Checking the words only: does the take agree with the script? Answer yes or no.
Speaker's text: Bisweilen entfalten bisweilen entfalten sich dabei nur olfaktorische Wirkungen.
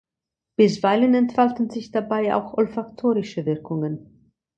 no